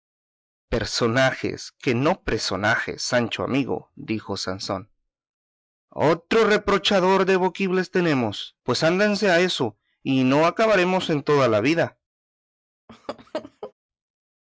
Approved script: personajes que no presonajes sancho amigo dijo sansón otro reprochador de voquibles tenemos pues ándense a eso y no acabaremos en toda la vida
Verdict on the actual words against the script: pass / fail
pass